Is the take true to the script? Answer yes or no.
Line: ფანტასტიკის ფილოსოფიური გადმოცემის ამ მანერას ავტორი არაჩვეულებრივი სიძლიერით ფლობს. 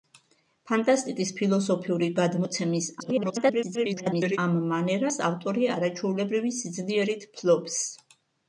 no